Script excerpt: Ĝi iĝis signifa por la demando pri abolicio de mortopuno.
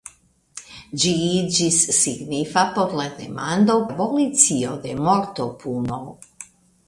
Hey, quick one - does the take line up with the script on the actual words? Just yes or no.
no